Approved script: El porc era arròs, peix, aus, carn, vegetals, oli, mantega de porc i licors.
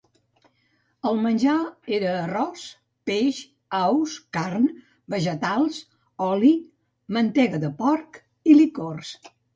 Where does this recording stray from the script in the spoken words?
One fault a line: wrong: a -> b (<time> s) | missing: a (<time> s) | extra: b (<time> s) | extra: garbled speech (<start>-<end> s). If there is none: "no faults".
wrong: porc -> menjar (1.2 s)